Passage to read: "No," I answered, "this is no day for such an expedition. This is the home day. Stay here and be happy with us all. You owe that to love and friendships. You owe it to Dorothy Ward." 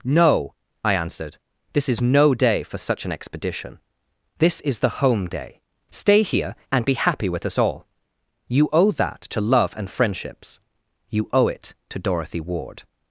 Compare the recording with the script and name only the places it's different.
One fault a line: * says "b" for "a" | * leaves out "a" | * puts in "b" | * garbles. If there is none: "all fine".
all fine